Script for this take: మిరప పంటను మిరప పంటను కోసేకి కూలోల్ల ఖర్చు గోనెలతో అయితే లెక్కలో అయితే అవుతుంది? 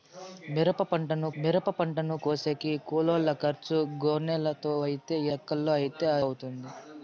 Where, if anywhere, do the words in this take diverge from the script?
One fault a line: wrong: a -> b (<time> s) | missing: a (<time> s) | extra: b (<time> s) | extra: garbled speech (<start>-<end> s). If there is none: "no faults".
no faults